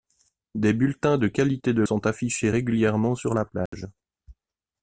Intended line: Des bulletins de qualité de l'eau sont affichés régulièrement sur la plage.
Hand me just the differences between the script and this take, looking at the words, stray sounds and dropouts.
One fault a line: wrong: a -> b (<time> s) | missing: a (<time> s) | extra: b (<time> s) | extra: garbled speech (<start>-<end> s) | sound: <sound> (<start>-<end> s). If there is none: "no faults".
missing: l'eau (1.8 s)
sound: dropout (3.7-3.7 s)